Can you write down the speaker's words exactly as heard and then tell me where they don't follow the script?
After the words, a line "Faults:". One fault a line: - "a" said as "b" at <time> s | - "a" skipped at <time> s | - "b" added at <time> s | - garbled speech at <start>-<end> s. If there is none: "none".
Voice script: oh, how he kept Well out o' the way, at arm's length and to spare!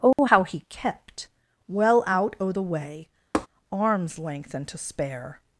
oh, how he kept Well out o' the way, arm's length and to spare!
Faults:
- "at" skipped at 3.1 s